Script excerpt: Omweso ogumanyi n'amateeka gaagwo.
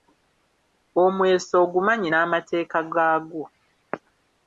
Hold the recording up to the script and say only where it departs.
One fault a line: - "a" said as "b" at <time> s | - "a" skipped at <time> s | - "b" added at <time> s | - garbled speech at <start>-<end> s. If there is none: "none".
none